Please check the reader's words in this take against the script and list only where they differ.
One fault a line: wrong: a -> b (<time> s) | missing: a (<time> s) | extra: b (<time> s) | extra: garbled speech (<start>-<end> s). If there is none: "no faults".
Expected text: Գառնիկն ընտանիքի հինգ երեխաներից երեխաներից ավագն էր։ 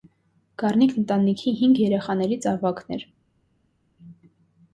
missing: երեխաներից (2.5 s)